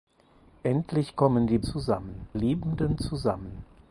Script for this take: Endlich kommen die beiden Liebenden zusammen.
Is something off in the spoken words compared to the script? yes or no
yes